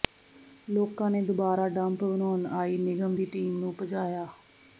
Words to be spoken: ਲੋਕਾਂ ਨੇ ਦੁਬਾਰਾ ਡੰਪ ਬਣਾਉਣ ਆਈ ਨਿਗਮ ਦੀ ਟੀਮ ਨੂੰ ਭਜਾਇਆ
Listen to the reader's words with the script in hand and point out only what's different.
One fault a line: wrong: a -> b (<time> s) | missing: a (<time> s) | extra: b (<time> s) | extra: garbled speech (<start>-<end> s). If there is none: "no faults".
no faults